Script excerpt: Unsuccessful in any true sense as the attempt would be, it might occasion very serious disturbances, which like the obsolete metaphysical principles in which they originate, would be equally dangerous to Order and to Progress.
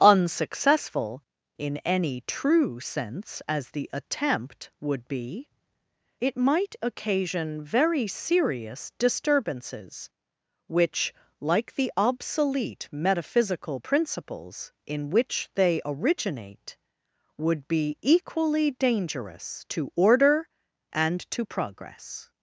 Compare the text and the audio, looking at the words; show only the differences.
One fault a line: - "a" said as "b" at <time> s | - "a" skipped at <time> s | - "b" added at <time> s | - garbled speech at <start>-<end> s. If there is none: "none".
none